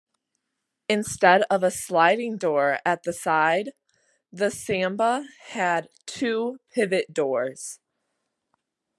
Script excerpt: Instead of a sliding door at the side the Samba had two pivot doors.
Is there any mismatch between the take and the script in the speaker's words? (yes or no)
no